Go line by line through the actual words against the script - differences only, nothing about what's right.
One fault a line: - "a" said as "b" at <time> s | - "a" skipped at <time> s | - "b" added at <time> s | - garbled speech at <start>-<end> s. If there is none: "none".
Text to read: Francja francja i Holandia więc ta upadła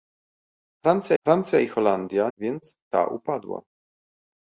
none